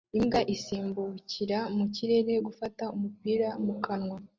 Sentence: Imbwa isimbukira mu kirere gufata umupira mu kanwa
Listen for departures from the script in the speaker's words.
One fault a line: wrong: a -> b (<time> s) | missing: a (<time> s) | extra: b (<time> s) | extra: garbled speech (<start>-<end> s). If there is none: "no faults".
no faults